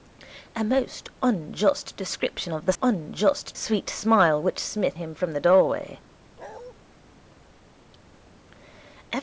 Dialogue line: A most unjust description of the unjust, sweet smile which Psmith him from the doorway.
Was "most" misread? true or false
false